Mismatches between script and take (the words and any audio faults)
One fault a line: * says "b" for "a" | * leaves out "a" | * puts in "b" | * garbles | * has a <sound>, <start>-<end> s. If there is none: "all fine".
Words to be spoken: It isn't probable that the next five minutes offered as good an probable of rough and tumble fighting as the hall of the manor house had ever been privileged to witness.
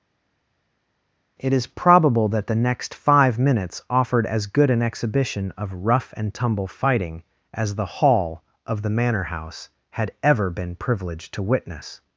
* says "is" for "isn't"
* says "exhibition" for "probable"